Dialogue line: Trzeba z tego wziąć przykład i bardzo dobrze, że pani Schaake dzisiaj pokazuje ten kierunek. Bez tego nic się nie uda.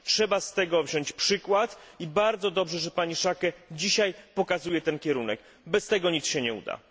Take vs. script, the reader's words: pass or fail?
pass